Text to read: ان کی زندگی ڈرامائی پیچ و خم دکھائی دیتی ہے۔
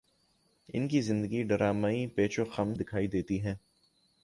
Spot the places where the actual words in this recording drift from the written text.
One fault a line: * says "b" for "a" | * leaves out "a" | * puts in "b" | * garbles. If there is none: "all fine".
all fine